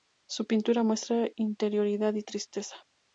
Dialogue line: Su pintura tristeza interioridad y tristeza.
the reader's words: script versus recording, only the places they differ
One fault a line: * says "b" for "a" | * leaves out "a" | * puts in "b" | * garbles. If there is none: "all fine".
* says "muestra" for "tristeza"